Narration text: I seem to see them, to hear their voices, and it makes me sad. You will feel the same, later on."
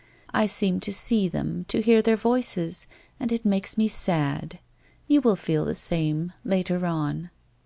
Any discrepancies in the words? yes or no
no